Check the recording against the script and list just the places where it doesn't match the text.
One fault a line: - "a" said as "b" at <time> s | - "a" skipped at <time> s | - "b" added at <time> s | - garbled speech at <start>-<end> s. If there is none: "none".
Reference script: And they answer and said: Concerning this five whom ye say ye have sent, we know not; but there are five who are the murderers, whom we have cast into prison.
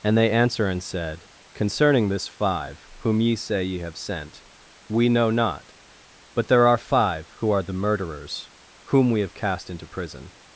none